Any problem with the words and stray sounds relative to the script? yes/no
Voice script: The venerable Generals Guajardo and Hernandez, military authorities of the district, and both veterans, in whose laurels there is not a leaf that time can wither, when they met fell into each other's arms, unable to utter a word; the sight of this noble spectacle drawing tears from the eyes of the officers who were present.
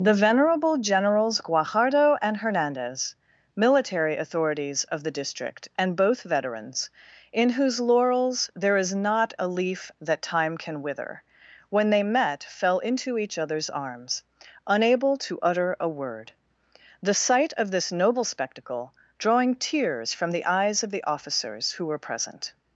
no